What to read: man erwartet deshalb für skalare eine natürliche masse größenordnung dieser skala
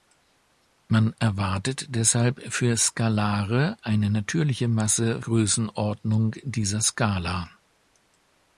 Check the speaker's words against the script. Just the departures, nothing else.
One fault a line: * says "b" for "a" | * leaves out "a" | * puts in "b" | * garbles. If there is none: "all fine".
all fine